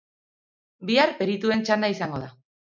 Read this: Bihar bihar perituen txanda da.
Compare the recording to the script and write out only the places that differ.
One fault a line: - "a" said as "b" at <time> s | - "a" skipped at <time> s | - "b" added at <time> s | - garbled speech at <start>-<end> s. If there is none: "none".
- "bihar" skipped at 1.1 s
- "izango" added at 2.0 s